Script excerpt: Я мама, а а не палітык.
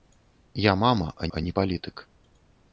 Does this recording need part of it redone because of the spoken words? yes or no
no